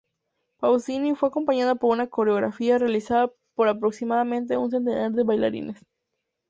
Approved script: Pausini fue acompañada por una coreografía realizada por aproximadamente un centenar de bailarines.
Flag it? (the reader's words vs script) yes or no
no